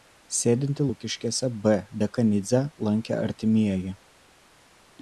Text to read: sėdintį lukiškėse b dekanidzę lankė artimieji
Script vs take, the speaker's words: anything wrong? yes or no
no